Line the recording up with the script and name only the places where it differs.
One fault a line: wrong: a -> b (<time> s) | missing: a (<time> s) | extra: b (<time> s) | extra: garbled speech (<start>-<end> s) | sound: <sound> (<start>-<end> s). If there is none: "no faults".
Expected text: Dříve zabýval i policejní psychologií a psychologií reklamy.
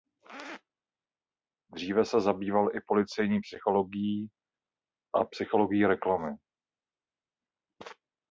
extra: se (2.0 s)